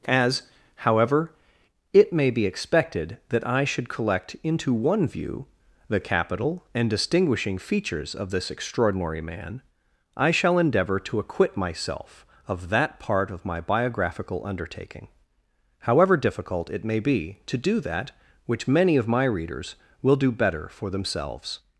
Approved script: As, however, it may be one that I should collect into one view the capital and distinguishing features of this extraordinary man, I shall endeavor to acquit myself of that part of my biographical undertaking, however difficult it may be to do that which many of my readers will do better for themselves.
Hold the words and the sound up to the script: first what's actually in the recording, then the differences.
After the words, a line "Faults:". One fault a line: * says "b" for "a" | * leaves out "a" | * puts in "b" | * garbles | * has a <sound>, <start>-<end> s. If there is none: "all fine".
As, however, it may be expected that I should collect into one view the capital and distinguishing features of this extraordinary man, I shall endeavor to acquit myself of that part of my biographical undertaking, however difficult it may be to do that which many of my readers will do better for themselves.
Faults:
* says "expected" for "one"